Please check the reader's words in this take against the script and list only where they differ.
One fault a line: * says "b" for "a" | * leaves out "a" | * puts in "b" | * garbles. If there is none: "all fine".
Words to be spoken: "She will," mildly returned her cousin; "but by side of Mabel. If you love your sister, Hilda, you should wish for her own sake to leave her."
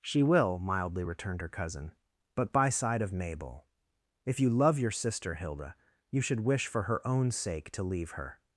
all fine